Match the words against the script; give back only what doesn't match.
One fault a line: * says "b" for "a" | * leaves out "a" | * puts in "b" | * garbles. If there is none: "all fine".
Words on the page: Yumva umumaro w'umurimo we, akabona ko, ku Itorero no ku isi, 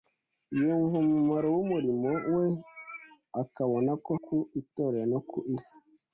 all fine